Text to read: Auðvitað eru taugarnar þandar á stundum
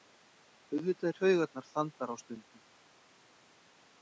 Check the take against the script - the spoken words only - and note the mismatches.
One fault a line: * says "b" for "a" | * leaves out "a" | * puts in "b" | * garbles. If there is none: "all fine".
* leaves out "eru"